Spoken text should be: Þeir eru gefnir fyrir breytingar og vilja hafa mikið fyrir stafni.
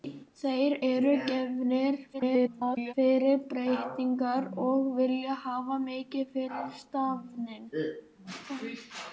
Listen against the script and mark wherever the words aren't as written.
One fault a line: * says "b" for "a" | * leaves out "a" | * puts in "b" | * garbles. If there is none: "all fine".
* garbles